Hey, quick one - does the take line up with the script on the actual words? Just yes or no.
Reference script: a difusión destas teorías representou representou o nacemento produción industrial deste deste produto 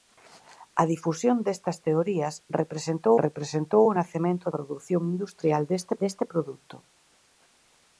yes